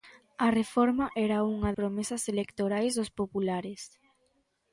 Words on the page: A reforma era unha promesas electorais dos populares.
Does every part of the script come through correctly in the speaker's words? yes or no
yes